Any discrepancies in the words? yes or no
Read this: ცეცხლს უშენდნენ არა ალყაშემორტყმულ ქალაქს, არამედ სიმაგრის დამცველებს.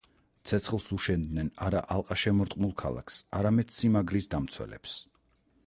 no